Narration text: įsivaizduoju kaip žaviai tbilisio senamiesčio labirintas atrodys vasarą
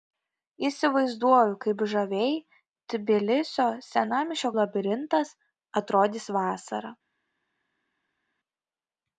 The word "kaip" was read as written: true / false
true